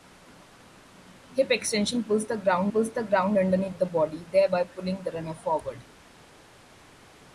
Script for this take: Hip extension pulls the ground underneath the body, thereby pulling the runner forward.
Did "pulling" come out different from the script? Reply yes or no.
no